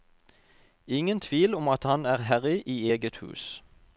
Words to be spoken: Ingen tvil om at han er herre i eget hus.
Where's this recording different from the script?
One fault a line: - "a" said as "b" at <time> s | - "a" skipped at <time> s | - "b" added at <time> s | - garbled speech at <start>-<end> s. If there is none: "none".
none